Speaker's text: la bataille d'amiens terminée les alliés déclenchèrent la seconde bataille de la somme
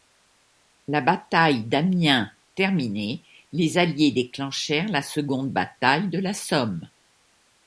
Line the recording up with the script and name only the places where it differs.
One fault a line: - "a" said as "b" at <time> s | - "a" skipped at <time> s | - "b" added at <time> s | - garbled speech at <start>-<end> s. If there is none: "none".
none